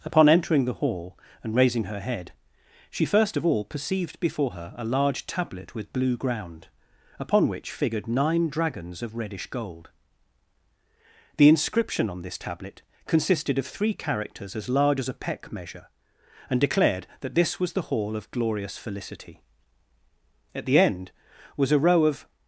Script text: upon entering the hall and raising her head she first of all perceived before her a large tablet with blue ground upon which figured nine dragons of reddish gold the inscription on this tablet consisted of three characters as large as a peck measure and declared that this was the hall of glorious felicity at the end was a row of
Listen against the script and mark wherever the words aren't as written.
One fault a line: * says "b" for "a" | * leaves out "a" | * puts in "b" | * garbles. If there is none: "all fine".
all fine